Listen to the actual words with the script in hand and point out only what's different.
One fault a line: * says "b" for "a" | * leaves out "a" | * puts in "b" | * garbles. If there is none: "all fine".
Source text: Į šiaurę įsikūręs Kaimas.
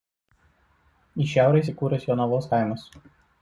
* puts in "Jonavos"